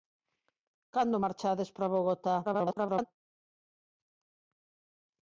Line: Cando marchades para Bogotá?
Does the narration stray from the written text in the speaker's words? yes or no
yes